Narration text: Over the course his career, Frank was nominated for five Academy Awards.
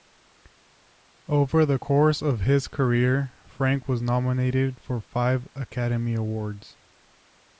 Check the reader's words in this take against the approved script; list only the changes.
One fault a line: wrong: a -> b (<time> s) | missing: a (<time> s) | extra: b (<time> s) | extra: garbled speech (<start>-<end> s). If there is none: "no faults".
extra: of (2.2 s)